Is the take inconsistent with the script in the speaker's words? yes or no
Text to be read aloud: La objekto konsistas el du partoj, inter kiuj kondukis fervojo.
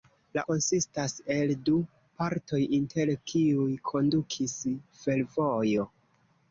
yes